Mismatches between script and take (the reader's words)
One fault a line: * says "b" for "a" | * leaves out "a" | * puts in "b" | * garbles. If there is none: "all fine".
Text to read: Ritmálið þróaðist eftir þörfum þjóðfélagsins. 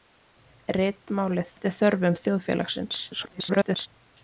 * leaves out "þróaðist"
* garbles